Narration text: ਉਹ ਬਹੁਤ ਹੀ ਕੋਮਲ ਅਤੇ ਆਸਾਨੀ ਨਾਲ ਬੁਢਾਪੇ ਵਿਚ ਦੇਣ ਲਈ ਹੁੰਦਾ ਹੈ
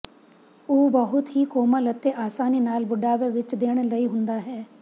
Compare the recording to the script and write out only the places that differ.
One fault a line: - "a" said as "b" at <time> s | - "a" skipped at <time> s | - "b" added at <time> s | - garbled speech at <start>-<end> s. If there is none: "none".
none